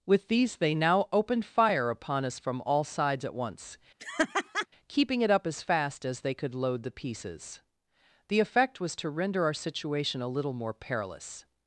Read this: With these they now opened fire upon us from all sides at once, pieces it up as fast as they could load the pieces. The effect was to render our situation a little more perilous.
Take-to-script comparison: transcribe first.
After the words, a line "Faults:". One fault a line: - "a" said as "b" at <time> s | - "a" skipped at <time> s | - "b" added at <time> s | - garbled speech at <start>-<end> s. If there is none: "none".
With these they now opened fire upon us from all sides at once, keeping it up as fast as they could load the pieces. The effect was to render our situation a little more perilous.
Faults:
- "pieces" said as "keeping" at 4.9 s